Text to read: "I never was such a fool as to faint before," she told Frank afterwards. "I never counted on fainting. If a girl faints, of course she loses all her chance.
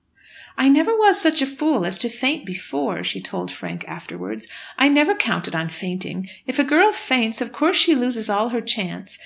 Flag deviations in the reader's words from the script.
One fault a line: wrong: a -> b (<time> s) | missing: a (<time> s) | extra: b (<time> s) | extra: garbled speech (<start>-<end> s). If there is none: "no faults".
no faults